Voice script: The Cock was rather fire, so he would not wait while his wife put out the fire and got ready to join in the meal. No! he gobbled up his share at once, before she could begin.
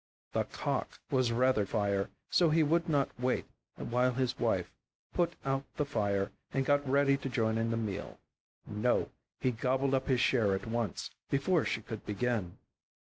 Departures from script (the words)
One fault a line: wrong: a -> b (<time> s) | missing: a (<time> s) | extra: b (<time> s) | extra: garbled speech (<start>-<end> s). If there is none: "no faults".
no faults